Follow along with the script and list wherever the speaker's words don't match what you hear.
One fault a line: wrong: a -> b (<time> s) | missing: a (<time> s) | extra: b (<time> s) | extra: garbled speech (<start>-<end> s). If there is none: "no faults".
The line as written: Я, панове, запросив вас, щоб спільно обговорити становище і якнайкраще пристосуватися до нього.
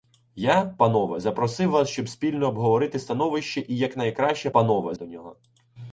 wrong: пристосуватися -> панове (4.5 s)